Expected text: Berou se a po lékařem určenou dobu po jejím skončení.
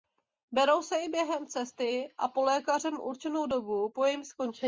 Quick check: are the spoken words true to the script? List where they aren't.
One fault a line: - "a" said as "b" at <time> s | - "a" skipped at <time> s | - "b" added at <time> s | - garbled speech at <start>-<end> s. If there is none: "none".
- "i během cesty" added at 1.0 s